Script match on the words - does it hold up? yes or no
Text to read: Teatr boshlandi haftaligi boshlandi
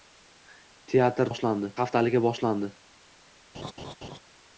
yes